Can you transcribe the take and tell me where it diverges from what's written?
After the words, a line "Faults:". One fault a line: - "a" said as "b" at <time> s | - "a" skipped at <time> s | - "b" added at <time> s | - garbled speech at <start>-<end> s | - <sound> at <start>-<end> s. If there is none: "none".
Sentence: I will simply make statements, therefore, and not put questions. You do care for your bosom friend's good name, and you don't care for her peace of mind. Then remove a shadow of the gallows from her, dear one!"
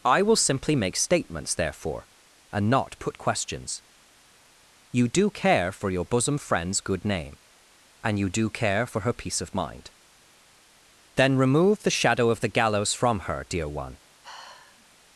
I will simply make statements, therefore, and not put questions. You do care for your bosom friend's good name, and you do care for her peace of mind. Then remove the shadow of the gallows from her, dear one!"
Faults:
- "don't" said as "do" at 8.3 s
- "a" said as "the" at 11.8 s
- sigh at 14.2-14.9 s